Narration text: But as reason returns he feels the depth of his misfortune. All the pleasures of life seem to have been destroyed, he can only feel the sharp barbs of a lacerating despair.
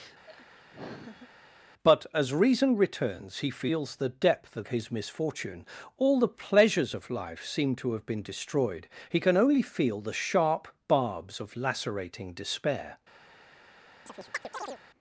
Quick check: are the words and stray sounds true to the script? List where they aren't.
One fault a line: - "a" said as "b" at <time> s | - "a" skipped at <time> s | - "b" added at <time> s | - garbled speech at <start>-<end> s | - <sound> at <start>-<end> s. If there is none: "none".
- laugh at 0.3-1.3 s
- "a" skipped at 11.6 s
- chirp at 14.1-14.8 s